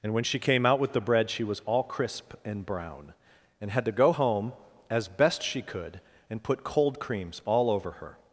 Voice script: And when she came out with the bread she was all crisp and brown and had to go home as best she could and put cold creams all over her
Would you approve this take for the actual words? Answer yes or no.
yes